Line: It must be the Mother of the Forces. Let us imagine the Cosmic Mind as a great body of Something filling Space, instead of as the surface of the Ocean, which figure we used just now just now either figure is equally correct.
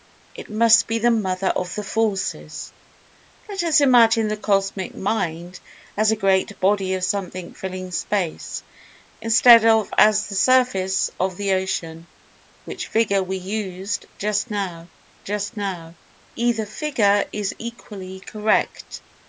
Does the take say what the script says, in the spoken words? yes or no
yes